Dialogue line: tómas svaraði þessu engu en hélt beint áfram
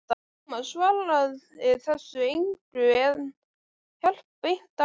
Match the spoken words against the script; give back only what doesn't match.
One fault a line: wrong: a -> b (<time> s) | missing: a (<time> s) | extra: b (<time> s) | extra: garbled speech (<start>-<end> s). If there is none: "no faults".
no faults